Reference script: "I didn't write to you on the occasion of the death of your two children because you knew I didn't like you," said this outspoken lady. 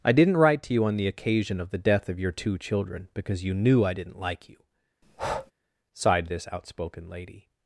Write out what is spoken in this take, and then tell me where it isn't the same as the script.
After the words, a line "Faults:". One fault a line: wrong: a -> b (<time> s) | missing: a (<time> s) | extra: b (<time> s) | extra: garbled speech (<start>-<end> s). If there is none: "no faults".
"I didn't write to you on the occasion of the death of your two children because you knew I didn't like you," sighed this outspoken lady.
Faults:
wrong: said -> sighed (5.9 s)